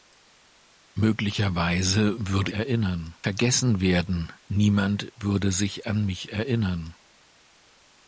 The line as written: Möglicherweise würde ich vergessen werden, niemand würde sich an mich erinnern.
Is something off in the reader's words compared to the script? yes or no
yes